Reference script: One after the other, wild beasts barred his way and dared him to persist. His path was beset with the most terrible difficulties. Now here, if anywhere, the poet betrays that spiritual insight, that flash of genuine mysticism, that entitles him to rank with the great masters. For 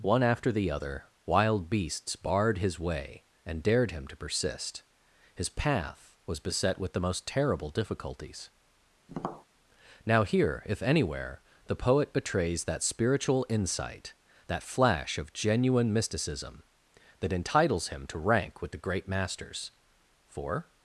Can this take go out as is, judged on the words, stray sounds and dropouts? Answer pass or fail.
fail